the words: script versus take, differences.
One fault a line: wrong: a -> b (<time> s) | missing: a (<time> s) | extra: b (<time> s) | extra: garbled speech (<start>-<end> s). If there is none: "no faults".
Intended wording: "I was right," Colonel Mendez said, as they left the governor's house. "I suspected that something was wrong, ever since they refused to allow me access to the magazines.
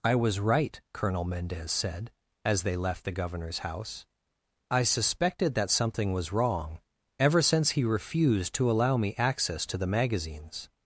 wrong: they -> he (7.7 s)